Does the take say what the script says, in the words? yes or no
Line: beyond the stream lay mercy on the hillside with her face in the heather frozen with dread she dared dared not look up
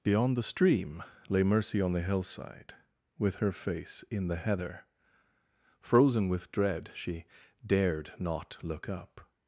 no